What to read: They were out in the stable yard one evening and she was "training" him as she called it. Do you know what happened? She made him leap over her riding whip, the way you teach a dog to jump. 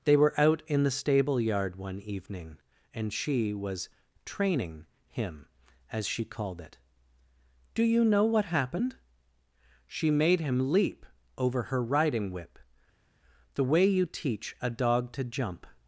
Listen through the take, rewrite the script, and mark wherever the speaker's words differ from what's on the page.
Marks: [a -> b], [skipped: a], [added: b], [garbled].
They were out in the stable yard one evening and she was "training" him as she called it. Do you know what happened? She made him leap over her riding whip, the way you teach a dog to jump.